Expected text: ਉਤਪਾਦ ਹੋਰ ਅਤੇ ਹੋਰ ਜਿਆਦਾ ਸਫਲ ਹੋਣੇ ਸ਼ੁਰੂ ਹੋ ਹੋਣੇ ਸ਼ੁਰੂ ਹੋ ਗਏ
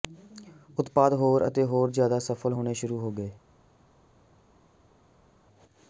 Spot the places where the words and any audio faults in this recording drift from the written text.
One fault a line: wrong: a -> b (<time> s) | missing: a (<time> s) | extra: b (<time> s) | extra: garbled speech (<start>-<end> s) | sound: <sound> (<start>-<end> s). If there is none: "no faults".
missing: ਹੋਣੇ ਸ਼ੁਰੂ ਹੋ (3.1 s)